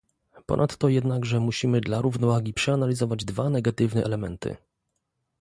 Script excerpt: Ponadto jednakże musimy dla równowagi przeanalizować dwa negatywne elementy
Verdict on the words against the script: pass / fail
pass